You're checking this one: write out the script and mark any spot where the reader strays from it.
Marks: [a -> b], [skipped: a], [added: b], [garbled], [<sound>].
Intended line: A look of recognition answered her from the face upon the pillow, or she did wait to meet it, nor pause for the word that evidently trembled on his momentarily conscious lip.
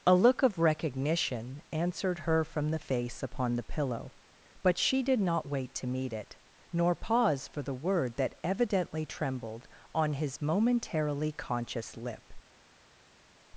A look of recognition answered her from the face upon the pillow, [or -> but] she did [added: not] wait to meet it, nor pause for the word that evidently trembled on his momentarily conscious lip.